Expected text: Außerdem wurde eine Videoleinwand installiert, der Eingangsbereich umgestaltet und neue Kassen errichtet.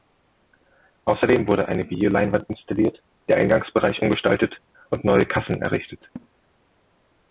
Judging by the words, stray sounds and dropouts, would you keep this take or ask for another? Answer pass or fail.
fail